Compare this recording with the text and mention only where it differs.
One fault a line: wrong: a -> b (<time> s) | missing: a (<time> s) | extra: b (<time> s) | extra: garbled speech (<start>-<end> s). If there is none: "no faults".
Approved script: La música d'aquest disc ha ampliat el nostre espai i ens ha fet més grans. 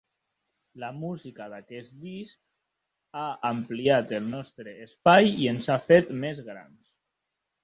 no faults